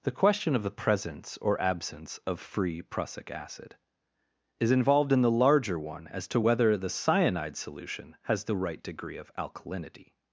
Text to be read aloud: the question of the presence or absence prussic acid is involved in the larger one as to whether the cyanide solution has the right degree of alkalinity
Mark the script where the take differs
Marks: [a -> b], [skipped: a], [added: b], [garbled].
the question of the presence or absence [added: of free] prussic acid is involved in the larger one as to whether the cyanide solution has the right degree of alkalinity